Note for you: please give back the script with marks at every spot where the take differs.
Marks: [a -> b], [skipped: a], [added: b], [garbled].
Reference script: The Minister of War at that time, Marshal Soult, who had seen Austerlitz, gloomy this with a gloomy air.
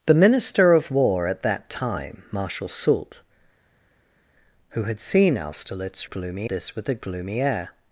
The Minister of War at that time, Marshal Soult, who had seen Austerlitz, gloomy this with a gloomy air.